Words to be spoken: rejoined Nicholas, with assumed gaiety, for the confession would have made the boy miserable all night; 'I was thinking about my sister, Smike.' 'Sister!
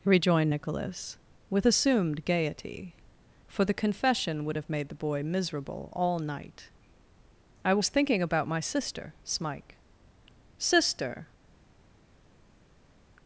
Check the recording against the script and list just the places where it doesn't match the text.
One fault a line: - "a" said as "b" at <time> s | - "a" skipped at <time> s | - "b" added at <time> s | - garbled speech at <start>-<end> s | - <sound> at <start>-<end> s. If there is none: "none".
none